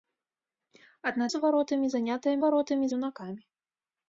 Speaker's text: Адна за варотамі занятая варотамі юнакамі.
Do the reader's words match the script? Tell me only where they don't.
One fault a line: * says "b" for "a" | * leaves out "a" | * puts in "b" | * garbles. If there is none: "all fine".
all fine